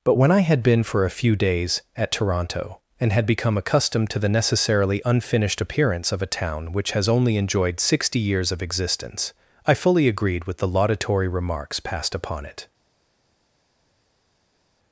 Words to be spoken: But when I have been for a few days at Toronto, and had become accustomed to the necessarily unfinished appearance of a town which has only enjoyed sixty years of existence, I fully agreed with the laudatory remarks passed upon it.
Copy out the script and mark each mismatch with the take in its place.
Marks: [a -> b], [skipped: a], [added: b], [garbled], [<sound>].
But when I [have -> had] been for a few days at Toronto, and had become accustomed to the necessarily unfinished appearance of a town which has only enjoyed sixty years of existence, I fully agreed with the laudatory remarks passed upon it.